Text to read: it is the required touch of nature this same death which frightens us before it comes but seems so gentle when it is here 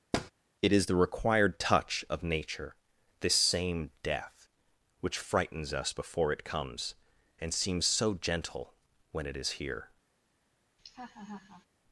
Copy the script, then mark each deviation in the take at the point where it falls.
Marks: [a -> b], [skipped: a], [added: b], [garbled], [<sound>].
[thud] it is the required touch of nature this same death which frightens us before it comes [but -> and] seems so gentle when it is here [laugh]